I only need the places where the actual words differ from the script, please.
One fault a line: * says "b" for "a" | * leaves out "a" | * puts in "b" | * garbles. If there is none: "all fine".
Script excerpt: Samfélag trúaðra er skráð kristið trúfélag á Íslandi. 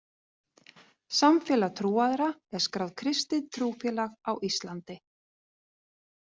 all fine